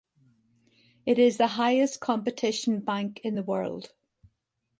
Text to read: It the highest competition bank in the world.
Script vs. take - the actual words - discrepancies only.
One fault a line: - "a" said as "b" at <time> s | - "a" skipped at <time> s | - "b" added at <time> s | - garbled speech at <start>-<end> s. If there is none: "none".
- "is" added at 1.2 s